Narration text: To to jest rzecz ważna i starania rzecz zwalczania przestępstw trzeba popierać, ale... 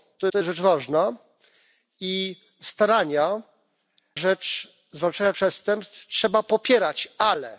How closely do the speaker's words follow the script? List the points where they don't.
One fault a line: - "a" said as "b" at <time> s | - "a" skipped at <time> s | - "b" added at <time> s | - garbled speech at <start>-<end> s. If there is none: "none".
none